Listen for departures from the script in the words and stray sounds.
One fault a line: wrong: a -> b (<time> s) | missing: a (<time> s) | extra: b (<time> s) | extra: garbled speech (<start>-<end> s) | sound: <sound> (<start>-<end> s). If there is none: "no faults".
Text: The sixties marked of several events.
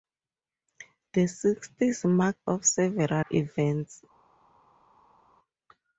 no faults